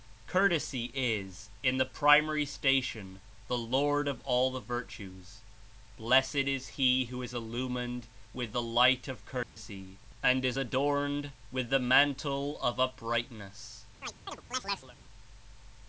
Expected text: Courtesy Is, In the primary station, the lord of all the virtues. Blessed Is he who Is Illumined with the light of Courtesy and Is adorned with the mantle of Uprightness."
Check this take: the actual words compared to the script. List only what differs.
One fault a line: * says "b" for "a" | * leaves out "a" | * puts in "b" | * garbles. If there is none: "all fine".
all fine